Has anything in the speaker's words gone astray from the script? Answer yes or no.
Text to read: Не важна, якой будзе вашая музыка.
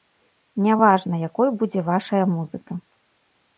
no